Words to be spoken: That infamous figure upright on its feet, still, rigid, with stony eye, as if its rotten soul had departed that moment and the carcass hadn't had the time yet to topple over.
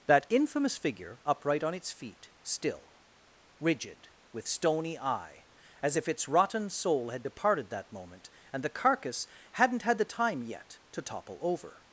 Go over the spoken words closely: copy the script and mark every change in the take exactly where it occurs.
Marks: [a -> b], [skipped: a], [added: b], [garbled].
That infamous figure upright on its feet, still, rigid, with stony eye, as if its rotten soul had departed that moment and the carcass hadn't had the time yet to topple over.